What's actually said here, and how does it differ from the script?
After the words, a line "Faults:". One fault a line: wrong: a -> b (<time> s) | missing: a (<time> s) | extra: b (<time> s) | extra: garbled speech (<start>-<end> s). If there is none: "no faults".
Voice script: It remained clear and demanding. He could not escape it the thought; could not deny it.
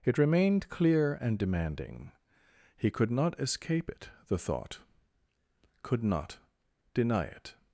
It remained clear and demanding. He could not escape it the thought; could not deny it.
Faults:
no faults